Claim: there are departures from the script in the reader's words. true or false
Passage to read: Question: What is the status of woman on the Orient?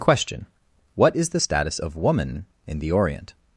true